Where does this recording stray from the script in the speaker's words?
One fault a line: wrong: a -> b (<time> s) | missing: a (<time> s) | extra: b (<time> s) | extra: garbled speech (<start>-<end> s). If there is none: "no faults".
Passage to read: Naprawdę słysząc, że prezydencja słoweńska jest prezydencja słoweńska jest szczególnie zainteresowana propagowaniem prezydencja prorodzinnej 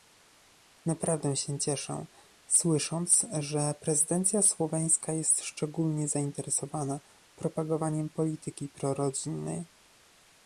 extra: się cieszę (1.4 s)
missing: prezydencja słoweńska jest (5.4 s)
wrong: prezydencja -> polityki (8.1 s)